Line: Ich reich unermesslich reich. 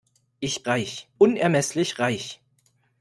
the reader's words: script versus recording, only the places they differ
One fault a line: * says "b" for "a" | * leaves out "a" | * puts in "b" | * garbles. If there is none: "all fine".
all fine